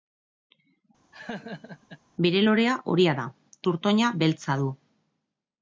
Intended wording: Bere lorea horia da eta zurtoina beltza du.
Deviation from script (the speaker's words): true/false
true